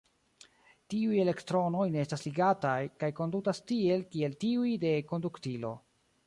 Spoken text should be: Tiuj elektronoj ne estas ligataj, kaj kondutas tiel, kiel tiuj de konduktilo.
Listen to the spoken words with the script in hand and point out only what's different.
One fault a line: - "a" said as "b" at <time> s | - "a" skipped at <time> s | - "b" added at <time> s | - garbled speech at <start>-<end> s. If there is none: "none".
none